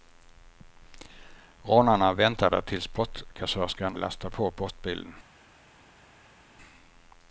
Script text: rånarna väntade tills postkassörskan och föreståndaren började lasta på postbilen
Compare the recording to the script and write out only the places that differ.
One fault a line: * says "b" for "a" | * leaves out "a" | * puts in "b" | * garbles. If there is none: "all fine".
* leaves out "och föreståndaren började"